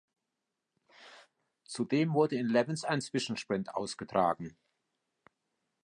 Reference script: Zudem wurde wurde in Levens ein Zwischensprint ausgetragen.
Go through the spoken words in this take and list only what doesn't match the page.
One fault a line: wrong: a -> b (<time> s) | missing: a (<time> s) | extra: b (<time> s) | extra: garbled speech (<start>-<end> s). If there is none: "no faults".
missing: wurde (2.4 s)